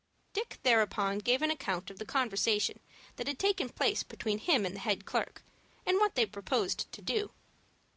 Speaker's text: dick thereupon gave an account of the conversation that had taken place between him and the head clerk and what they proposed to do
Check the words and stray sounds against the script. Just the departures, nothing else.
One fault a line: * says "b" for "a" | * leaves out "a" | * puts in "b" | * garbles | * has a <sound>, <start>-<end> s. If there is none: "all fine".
all fine